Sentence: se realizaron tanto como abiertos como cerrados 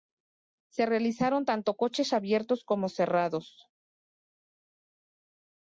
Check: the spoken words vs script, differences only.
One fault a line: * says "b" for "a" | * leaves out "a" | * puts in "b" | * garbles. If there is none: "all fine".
* says "coches" for "como"